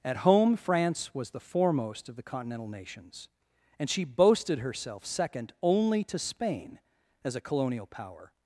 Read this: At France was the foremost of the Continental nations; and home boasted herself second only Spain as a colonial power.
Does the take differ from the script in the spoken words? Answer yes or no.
yes